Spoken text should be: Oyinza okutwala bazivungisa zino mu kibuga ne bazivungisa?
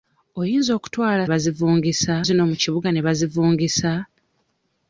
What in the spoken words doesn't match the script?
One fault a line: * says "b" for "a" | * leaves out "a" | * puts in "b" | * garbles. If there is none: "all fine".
all fine